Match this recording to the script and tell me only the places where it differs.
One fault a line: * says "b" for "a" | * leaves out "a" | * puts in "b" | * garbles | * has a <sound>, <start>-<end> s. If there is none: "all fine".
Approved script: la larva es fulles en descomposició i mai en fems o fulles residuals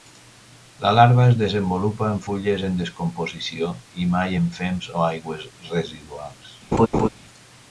* puts in "desenvolupa en"
* says "aigües" for "fulles"
* has a laugh, 6.7-7.1 s